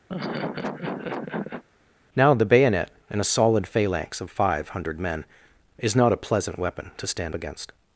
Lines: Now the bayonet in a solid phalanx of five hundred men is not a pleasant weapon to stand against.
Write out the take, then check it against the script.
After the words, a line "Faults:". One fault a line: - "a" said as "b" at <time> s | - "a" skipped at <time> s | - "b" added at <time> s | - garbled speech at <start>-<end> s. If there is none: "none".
Now the bayonet in a solid phalanx of five hundred men is not a pleasant weapon to stand against.
Faults:
none